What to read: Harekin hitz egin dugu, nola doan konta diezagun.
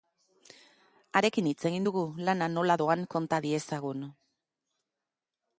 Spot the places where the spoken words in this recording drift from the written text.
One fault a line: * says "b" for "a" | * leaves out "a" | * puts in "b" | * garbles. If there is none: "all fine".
* puts in "lana"